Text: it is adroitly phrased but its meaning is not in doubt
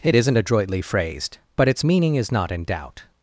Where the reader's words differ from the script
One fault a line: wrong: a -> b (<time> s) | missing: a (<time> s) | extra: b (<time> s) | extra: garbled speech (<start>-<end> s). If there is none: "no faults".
wrong: is -> isn't (0.1 s)